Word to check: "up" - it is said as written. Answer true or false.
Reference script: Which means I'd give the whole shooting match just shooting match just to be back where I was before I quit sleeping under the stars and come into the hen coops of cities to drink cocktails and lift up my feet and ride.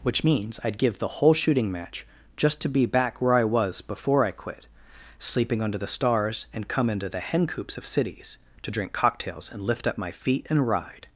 true